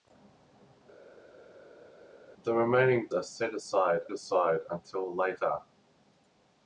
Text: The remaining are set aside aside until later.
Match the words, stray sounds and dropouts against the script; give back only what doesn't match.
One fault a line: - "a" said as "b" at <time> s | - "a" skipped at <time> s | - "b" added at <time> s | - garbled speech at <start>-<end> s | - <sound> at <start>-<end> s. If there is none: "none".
none